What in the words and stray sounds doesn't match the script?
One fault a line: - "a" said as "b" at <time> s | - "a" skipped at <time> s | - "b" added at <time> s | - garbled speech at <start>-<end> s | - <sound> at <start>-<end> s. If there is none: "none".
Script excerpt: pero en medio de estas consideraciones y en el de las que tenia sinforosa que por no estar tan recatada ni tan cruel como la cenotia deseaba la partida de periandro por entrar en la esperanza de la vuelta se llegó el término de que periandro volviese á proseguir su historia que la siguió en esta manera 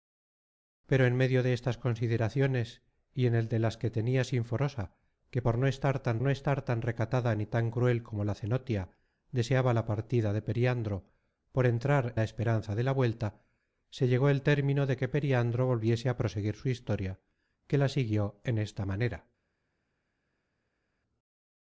- "no estar tan" added at 6.2 s
- "en" skipped at 12.1 s